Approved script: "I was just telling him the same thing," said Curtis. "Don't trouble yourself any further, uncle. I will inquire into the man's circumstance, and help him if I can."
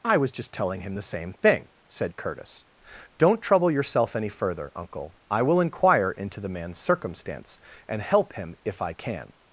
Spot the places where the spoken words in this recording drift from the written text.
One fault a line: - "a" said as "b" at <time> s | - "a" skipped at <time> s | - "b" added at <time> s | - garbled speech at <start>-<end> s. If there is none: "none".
none